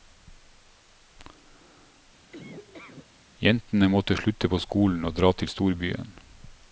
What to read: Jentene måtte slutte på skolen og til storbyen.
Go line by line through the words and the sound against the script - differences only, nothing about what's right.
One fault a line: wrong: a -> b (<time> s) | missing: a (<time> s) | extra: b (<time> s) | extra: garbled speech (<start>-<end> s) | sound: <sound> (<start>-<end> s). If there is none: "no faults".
sound: laugh (2.3-3.1 s)
extra: dra (5.2 s)